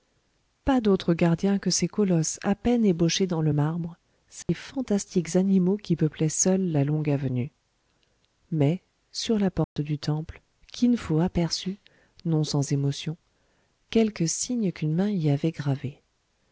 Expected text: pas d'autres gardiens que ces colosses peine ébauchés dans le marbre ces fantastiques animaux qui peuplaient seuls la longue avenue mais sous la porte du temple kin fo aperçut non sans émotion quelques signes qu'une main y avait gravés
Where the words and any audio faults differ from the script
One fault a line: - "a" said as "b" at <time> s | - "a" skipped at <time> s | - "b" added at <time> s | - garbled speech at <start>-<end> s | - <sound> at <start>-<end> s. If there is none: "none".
- "à" added at 2.4 s
- dropout at 4.4-4.5 s
- "sous" said as "sur" at 9.1 s
- dropout at 9.6-9.8 s